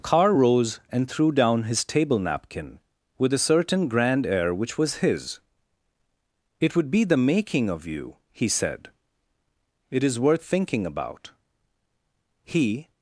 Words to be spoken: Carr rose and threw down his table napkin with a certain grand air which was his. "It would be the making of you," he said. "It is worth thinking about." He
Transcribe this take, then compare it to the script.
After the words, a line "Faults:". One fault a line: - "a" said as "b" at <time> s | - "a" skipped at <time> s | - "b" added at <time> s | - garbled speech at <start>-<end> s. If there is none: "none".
Carr rose and threw down his table napkin with a certain grand air which was his. "It would be the making of you," he said. "It is worth thinking about." He
Faults:
none